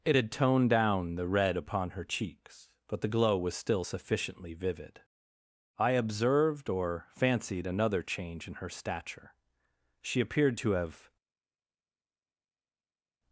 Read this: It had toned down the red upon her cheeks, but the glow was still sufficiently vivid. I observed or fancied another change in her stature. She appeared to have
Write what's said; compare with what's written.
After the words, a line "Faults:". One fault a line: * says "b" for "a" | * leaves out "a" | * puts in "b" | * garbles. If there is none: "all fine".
It had toned down the red upon her cheeks, but the glow was still sufficiently vivid. I observed or fancied another change in her stature. She appeared to have
Faults:
all fine